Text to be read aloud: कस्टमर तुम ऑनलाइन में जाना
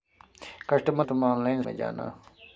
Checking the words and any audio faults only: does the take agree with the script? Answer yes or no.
yes